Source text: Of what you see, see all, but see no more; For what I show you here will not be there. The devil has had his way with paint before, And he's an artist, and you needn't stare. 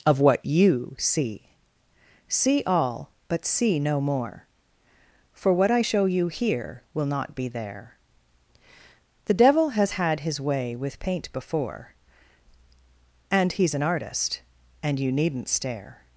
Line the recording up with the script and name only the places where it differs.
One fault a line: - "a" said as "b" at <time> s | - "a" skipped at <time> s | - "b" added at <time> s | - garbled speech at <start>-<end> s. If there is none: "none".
none